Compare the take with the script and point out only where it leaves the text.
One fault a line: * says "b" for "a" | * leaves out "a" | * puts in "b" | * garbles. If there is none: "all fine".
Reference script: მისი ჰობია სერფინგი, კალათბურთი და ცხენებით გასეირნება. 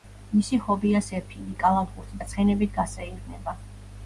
all fine